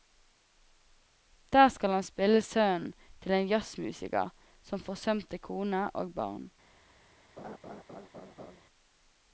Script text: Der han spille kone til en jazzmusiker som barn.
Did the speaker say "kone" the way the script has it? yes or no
no